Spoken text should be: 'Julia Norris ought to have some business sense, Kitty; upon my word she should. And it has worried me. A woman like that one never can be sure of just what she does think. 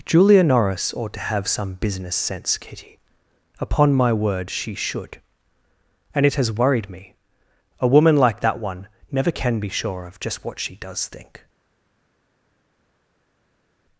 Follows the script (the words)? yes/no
yes